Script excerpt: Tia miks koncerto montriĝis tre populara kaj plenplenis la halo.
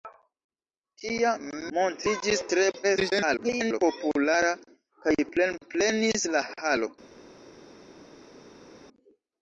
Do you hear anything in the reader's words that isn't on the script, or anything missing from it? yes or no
yes